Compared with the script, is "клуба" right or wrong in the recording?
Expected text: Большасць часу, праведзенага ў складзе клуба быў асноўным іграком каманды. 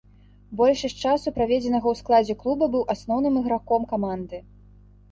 right